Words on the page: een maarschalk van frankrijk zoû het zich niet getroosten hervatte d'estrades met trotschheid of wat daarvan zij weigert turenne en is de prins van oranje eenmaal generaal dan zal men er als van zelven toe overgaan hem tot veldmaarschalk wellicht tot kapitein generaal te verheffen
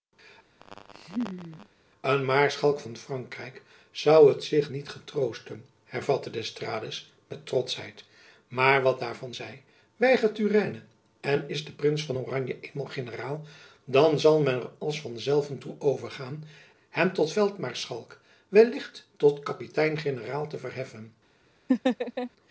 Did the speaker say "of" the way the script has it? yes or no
no